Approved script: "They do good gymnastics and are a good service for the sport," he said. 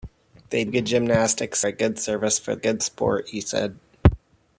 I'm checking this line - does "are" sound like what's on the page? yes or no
no